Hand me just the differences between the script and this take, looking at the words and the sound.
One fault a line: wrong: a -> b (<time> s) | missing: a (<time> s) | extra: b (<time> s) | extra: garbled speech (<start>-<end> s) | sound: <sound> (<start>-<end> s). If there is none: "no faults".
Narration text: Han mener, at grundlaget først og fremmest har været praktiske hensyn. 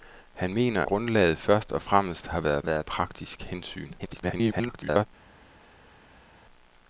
missing: at (0.8 s)
extra: været (2.6 s)
extra: garbled speech (4.0-5.1 s)